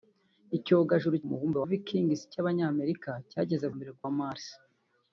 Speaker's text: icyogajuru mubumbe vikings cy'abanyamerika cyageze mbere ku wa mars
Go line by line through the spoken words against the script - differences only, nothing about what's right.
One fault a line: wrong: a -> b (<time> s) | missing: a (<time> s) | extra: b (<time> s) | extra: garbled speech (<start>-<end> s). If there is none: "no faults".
no faults